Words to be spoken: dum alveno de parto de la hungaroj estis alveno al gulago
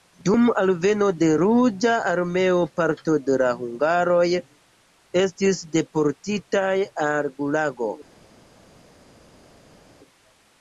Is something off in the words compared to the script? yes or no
yes